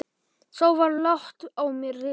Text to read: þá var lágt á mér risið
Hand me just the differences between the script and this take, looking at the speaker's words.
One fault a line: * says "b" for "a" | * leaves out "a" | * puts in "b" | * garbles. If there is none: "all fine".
all fine